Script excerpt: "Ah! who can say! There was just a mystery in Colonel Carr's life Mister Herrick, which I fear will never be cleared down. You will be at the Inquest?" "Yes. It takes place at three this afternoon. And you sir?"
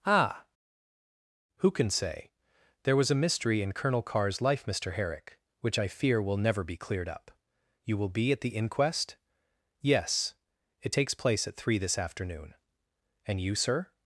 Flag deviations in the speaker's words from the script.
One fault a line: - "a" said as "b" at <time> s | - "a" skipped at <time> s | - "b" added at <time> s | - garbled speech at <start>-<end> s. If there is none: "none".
- "just" skipped at 3.1 s
- "down" said as "up" at 7.1 s